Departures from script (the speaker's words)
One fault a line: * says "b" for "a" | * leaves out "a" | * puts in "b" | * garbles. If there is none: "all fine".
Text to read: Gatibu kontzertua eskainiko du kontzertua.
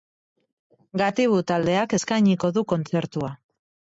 * says "taldeak" for "kontzertua"